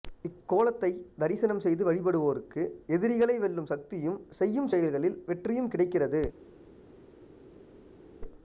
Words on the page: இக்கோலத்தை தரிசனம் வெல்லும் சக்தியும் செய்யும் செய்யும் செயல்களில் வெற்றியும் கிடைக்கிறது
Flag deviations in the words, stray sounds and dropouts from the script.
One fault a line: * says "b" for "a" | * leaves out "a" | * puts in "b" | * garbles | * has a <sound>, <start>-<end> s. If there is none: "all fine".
* puts in "செய்து வழிபடுவோருக்கு எதிரிகளை"
* leaves out "செய்யும்"